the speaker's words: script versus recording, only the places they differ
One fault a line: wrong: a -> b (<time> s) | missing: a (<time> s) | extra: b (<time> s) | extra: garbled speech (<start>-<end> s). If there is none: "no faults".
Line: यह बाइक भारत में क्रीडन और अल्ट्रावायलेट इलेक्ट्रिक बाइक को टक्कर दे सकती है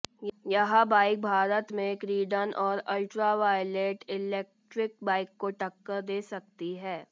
no faults